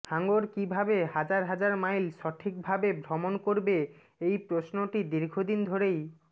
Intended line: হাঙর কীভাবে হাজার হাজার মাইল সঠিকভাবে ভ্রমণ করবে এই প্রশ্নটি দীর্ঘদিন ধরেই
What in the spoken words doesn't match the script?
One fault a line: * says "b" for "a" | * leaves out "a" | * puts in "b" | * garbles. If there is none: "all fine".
all fine